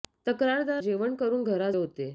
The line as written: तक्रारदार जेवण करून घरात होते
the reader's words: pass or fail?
pass